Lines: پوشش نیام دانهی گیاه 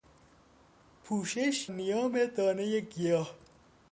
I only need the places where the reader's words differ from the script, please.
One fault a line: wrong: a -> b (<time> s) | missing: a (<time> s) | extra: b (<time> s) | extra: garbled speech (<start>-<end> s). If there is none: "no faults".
no faults